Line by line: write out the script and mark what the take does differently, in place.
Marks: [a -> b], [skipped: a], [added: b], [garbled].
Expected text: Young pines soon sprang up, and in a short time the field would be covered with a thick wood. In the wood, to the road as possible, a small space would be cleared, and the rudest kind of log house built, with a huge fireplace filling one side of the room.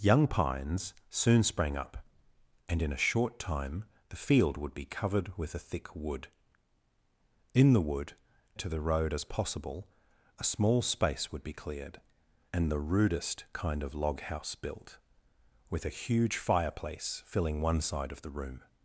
Young pines soon sprang up, and in a short time the field would be covered with a thick wood. In the wood, to the road as possible, a small space would be cleared, and the rudest kind of log house built, with a huge fireplace filling one side of the room.